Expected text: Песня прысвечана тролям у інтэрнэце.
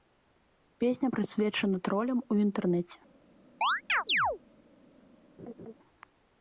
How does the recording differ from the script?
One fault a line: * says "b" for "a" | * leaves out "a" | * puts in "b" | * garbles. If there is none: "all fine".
all fine